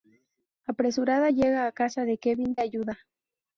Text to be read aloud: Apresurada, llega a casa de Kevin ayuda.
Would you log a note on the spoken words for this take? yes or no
no